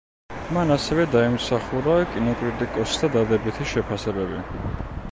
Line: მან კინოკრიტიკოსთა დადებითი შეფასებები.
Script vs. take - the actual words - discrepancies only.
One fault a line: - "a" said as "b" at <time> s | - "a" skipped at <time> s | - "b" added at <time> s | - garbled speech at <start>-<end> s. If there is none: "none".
- "ასევე დაიმსახურა" added at 0.8 s